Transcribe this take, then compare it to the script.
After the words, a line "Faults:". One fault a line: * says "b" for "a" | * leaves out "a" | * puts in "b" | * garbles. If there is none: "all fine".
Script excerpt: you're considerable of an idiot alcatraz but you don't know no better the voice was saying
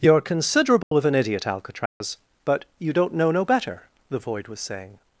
you're considerable of an idiot alcatraz but you don't know no better the void was saying
Faults:
* says "void" for "voice"